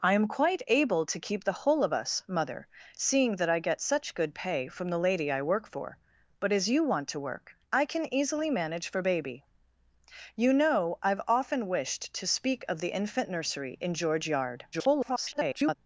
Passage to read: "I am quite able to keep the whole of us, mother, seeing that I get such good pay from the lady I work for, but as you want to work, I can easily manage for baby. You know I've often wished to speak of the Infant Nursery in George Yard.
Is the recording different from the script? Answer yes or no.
yes